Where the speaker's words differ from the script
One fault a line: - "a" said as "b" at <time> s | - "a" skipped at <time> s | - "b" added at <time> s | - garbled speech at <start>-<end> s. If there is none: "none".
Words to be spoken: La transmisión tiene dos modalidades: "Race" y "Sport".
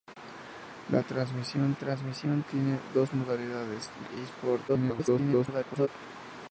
- "transmisión" added at 1.7 s
- "Race" skipped at 3.9 s
- garbled speech at 4.7-5.9 s